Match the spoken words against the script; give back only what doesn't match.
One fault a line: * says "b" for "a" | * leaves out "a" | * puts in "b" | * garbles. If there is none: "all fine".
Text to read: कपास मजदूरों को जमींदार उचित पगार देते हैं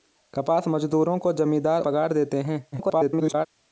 * leaves out "उचित"
* garbles